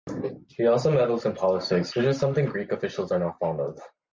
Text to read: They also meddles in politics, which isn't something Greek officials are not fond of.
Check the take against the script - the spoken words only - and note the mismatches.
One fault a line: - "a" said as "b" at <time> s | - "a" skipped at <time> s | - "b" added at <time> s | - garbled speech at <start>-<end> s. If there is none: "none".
- "They" said as "He" at 0.5 s
- "isn't" said as "is" at 2.0 s